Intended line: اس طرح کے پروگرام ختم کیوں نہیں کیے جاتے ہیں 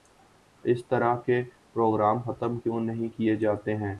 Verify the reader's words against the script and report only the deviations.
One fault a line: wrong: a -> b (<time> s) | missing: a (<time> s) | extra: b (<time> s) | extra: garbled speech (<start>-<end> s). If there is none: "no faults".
no faults